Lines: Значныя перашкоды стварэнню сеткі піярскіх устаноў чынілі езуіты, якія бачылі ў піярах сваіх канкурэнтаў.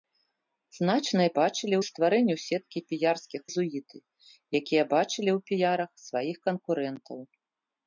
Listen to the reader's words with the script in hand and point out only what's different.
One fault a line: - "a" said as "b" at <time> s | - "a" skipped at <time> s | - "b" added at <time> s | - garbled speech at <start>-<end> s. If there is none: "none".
- "перашкоды" said as "бачылі" at 1.4 s
- "устаноў чынілі" skipped at 3.4 s